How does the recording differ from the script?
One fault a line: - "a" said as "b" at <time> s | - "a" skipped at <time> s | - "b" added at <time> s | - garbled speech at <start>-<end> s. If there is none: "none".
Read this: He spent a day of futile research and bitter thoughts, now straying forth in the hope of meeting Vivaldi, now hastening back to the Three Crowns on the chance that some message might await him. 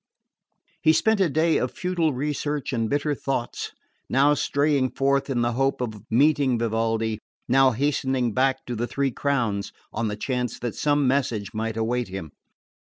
none